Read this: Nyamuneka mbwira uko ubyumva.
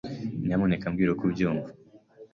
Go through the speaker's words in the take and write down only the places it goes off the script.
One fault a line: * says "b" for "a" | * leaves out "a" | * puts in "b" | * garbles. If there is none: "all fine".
all fine